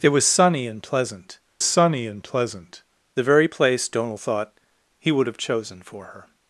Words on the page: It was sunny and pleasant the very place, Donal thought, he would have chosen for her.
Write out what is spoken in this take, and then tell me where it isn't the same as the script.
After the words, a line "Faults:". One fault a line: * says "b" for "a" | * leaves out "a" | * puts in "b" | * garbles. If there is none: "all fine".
It was sunny and pleasant sunny and pleasant the very place, Donal thought, he would have chosen for her.
Faults:
* puts in "sunny and pleasant"